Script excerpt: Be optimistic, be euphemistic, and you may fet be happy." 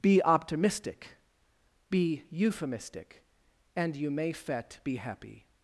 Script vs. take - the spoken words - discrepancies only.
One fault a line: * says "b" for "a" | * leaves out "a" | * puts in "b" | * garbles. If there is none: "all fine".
all fine